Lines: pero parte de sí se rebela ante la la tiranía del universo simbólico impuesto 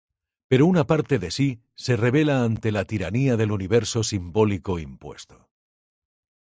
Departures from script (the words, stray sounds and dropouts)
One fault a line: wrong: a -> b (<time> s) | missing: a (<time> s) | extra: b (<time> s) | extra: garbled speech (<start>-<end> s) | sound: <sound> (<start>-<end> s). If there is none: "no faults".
extra: una (0.7 s)
missing: la (2.9 s)